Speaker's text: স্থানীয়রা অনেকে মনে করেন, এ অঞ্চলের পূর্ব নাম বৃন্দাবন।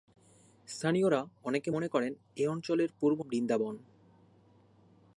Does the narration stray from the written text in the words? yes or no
yes